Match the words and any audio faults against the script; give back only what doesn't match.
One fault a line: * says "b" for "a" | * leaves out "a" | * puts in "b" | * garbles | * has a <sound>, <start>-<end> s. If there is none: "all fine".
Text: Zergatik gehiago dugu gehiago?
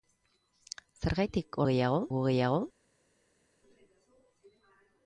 all fine